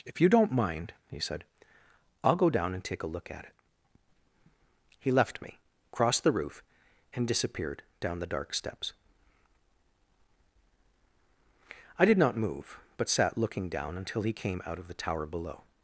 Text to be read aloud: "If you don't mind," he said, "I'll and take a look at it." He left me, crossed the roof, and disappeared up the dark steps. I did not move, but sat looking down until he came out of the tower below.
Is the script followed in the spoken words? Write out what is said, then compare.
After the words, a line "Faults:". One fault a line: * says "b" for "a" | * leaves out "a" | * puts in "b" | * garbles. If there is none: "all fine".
"If you don't mind," he said, "I'll go down and take a look at it." He left me, crossed the roof, and disappeared down the dark steps. I did not move, but sat looking down until he came out of the tower below.
Faults:
* puts in "go down"
* says "down" for "up"